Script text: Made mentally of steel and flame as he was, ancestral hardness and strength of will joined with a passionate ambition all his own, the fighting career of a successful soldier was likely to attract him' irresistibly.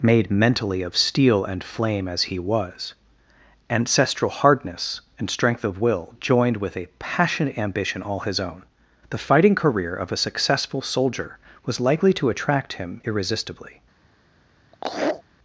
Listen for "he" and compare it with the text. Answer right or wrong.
right